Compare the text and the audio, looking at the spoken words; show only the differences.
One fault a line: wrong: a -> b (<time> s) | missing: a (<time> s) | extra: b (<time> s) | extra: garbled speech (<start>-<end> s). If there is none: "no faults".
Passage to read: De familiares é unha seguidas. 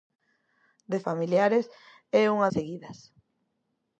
no faults